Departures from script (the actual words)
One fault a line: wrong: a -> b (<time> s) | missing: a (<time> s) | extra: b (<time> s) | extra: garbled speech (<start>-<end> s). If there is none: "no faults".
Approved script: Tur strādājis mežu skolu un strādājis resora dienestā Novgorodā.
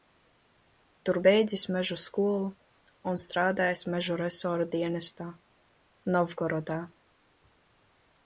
wrong: strādājis -> beidzis (1.2 s)
extra: mežu (3.9 s)